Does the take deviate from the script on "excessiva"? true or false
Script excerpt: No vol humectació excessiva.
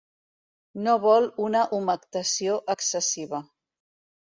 false